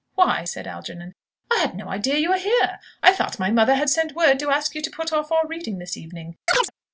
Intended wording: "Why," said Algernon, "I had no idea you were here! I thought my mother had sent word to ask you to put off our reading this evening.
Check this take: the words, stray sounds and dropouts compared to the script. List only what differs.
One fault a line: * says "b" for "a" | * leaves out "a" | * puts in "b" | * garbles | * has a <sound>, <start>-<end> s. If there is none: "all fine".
* has a chirp, 6.5-6.7 s